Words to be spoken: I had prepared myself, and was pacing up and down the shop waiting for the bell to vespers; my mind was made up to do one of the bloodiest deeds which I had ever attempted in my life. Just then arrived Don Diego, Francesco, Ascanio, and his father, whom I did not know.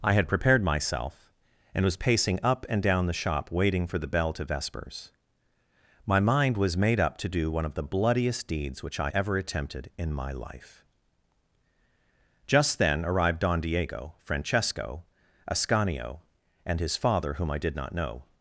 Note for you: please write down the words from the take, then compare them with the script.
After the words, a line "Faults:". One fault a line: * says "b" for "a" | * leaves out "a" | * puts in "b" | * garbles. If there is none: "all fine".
I had prepared myself, and was pacing up and down the shop waiting for the bell to vespers; my mind was made up to do one of the bloodiest deeds which I ever attempted in my life. Just then arrived Don Diego, Francesco, Ascanio, and his father, whom I did not know.
Faults:
* leaves out "had"